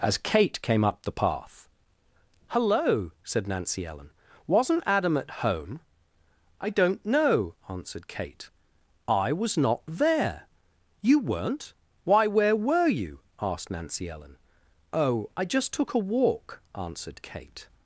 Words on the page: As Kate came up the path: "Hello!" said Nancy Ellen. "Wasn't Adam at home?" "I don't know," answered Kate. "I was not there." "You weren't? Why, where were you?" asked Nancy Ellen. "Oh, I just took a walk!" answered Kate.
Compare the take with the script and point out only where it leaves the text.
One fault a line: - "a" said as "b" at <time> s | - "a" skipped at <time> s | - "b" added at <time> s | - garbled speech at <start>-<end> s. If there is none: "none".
none